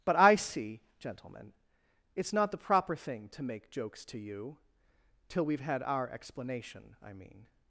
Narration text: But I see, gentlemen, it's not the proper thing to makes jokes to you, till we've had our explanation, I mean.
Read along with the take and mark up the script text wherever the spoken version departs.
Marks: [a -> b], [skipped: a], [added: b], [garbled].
But I see, gentlemen, it's not the proper thing to [makes -> make] jokes to you, till we've had our explanation, I mean.